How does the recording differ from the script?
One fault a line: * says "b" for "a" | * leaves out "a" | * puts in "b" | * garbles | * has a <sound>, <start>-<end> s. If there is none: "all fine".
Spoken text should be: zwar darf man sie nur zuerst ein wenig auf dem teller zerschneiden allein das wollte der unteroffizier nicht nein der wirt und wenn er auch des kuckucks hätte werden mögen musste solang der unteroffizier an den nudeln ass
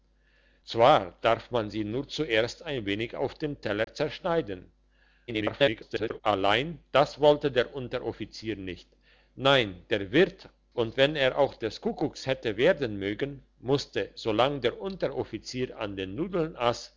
* has a dropout, 3.8-3.9 s
* garbles